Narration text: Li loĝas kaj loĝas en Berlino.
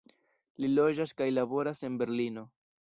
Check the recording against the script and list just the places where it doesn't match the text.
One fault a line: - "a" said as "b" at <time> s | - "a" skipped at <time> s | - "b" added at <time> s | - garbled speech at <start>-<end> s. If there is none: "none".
- "loĝas" said as "laboras" at 1.4 s